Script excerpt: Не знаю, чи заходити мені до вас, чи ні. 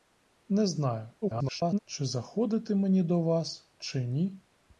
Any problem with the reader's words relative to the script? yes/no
yes